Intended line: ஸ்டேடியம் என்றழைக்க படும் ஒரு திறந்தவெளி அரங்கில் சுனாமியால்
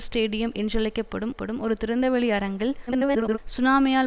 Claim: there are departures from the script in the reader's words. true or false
true